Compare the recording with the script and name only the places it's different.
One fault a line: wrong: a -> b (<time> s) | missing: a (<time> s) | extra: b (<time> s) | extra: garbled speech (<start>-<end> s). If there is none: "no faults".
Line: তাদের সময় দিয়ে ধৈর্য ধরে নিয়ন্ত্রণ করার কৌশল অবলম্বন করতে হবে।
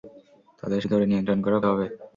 missing: সময় দিয়ে ধৈর্য (0.8 s)
missing: কৌশল অবলম্বন করতে (1.6 s)